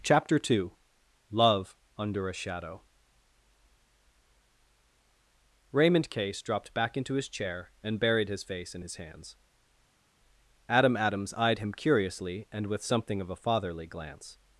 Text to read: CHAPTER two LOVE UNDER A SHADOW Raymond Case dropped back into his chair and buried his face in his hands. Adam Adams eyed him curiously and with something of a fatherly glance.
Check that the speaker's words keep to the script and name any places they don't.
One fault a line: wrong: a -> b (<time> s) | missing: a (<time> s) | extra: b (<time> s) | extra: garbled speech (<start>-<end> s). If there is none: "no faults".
no faults